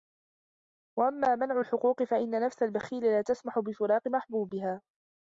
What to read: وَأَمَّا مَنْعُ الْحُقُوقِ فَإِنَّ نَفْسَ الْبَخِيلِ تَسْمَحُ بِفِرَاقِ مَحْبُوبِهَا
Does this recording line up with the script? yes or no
no